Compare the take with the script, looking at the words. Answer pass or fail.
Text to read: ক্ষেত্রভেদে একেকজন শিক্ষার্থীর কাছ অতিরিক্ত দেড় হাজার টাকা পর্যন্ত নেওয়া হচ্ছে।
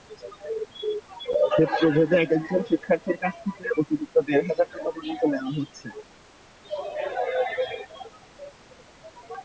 fail